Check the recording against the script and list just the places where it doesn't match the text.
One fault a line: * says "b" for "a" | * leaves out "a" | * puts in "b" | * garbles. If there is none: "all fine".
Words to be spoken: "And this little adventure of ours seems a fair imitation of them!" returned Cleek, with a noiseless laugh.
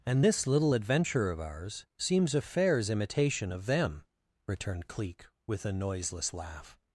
* says "fairs" for "fair"